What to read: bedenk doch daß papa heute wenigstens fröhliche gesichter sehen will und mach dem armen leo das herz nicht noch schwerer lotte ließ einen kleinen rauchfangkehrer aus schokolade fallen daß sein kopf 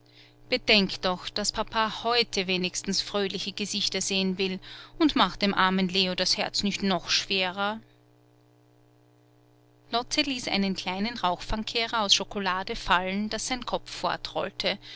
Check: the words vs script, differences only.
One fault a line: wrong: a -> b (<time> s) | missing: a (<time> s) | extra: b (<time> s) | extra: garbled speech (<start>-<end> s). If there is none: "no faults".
no faults